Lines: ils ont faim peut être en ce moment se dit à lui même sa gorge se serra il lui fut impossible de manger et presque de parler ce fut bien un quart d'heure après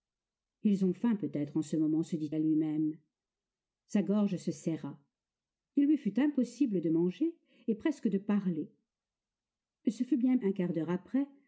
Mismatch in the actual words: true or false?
false